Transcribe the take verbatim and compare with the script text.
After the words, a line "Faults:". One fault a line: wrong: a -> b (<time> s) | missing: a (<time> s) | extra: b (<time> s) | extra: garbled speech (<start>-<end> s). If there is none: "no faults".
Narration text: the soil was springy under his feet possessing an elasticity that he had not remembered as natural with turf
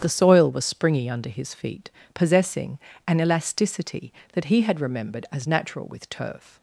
the soil was springy under his feet possessing an elasticity that he had remembered as natural with turf
Faults:
missing: not (4.8 s)